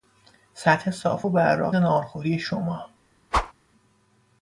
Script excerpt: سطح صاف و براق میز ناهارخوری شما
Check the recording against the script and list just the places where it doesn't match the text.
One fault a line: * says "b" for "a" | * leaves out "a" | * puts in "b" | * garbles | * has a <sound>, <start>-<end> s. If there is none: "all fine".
* leaves out "میز"
* has a whoosh, 3.3-3.5 s